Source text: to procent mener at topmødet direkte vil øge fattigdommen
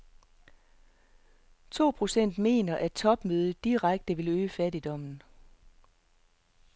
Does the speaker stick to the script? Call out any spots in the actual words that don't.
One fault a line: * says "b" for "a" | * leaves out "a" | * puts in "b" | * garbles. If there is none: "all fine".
all fine